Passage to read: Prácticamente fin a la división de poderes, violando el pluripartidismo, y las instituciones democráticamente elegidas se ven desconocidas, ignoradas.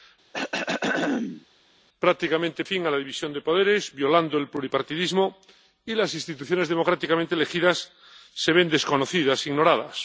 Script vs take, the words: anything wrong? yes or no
no